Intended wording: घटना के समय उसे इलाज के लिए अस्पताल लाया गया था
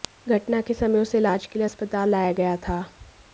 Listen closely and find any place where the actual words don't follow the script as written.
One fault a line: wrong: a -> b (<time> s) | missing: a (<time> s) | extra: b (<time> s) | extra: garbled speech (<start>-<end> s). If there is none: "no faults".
no faults